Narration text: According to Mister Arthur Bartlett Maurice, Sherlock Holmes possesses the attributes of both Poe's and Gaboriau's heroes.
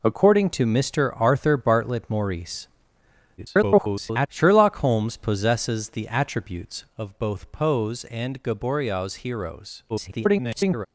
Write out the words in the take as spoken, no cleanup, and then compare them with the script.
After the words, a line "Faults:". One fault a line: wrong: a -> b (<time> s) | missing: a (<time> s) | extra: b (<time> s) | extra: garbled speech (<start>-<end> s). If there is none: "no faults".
According to Mister Arthur Bartlett Maurice, [garbled] Sherlock Holmes possesses the attributes of both Poe's and Gaboriau's heroes. [garbled]
Faults:
extra: garbled speech (3.4-4.3 s)
extra: garbled speech (9.9-10.9 s)